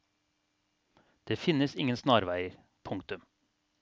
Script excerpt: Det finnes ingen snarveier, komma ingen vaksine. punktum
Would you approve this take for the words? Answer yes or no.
no